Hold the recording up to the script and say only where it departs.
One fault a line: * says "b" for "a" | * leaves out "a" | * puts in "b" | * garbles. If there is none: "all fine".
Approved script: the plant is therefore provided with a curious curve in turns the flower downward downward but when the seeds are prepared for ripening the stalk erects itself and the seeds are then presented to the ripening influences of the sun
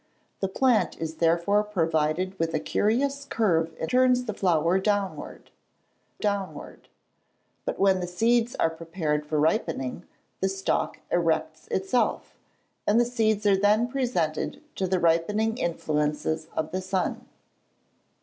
all fine